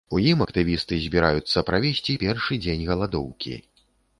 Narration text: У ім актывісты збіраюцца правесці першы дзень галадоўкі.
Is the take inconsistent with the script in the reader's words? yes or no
no